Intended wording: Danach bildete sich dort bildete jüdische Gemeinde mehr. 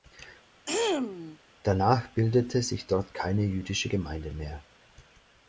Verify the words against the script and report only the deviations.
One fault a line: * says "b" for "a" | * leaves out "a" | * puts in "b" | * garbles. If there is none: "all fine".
* says "keine" for "bildete"